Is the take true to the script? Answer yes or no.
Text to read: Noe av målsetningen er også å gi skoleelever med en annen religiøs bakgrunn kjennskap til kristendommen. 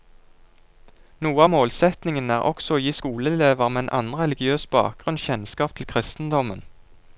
yes